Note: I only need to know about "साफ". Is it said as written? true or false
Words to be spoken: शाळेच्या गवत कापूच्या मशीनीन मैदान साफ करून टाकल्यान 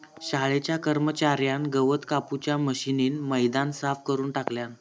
true